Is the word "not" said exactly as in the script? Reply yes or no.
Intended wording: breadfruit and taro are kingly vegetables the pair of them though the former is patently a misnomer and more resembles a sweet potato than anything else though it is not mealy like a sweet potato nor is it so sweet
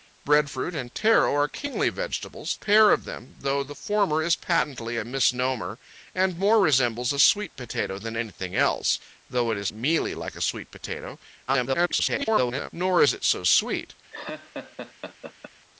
no